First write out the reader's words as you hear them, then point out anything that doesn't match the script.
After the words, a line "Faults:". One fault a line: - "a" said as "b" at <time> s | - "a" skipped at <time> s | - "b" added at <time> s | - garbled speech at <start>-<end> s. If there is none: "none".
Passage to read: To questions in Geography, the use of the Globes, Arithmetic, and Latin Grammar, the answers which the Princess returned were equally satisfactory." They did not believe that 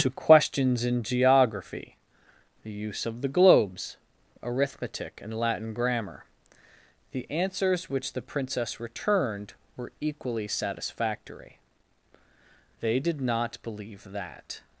To questions in Geography, the use of the Globes, Arithmetic, and Latin Grammar, the answers which the Princess returned were equally satisfactory." They did not believe that
Faults:
none